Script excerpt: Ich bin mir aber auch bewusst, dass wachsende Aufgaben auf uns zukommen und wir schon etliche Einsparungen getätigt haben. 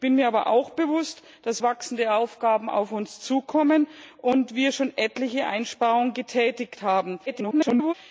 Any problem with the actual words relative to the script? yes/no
yes